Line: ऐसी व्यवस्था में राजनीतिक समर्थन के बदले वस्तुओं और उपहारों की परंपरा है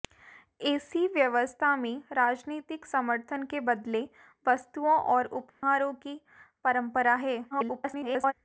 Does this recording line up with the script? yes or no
no